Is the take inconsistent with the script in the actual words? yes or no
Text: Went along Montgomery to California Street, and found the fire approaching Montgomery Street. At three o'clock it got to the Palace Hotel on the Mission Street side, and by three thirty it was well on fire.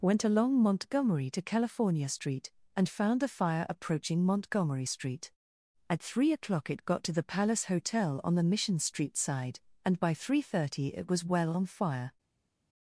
no